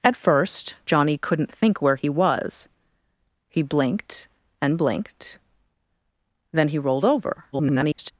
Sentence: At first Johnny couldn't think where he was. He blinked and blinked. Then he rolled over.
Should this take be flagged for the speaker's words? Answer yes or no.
yes